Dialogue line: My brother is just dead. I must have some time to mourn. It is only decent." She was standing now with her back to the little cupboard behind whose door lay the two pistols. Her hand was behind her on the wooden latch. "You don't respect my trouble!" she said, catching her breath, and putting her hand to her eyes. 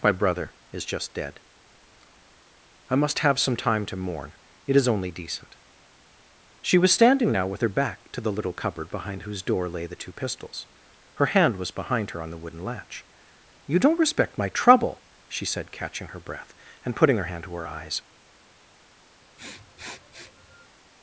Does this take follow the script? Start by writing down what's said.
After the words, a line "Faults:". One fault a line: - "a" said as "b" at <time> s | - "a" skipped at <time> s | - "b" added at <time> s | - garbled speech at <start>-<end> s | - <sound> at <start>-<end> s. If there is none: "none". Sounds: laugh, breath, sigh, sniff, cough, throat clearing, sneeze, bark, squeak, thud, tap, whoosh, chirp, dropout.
My brother is just dead. I must have some time to mourn. It is only decent." She was standing now with her back to the little cupboard behind whose door lay the two pistols. Her hand was behind her on the wooden latch. "You don't respect my trouble!" she said, catching her breath, and putting her hand to her eyes.
Faults:
- sniff at 19.4-20.7 s